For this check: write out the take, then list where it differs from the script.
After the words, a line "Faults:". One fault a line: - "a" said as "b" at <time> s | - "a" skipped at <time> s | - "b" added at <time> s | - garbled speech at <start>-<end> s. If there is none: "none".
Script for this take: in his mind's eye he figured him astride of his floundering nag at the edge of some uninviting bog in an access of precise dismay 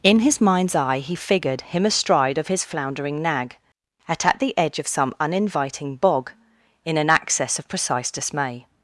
in his mind's eye he figured him astride of his floundering nag at at the edge of some uninviting bog in an access of precise dismay
Faults:
- "at" added at 4.2 s